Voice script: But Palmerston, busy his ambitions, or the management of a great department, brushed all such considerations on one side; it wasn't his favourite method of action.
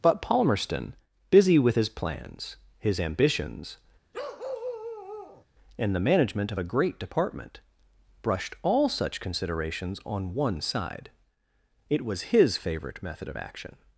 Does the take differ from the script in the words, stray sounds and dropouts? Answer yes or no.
yes